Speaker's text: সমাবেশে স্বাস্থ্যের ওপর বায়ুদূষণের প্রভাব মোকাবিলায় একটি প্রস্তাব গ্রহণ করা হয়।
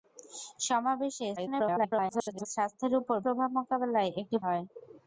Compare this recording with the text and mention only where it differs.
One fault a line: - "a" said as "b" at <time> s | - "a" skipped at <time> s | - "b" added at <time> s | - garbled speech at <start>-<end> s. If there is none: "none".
- garbled speech at 1.4-2.5 s
- "বায়ুদূষণের" skipped at 3.2 s
- "প্রস্তাব গ্রহণ করা" skipped at 4.4 s